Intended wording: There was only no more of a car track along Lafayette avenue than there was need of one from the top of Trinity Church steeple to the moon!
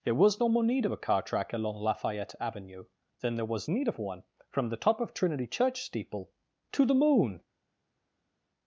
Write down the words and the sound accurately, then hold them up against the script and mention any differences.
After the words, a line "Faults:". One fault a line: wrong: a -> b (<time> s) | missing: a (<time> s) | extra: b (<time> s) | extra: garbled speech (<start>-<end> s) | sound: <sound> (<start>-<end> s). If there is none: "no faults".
There was no more need of a car track along Lafayette avenue than there was need of one from the top of Trinity Church steeple to the moon!
Faults:
missing: only (0.4 s)
extra: need (0.6 s)